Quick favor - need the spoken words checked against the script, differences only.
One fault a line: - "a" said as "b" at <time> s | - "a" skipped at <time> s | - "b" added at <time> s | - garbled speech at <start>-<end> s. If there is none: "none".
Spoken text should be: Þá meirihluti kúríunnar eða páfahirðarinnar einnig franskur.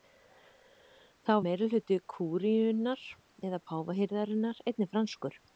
none